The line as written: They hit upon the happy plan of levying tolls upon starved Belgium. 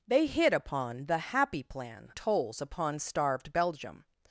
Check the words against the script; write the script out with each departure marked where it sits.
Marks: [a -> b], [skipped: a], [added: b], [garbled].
They hit upon the happy plan [skipped: of levying] tolls upon starved Belgium.